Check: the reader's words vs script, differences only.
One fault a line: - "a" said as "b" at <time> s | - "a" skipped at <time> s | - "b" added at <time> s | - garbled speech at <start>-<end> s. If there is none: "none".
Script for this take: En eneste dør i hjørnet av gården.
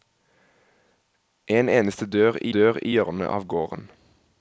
- "dør i" added at 2.5 s